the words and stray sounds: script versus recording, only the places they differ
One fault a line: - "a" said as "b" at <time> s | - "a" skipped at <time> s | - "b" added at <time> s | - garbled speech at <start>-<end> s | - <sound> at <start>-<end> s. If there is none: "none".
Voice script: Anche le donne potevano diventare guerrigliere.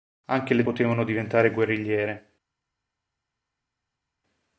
- "donne" skipped at 0.6 s